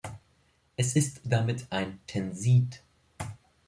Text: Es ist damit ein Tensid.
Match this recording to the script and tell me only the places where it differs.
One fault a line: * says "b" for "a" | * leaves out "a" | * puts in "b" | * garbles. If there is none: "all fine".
all fine